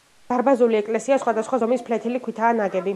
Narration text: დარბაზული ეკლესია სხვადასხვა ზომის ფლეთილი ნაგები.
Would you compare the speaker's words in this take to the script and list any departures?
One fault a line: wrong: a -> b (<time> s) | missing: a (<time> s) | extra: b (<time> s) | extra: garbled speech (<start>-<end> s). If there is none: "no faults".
extra: ქვითაა (2.3 s)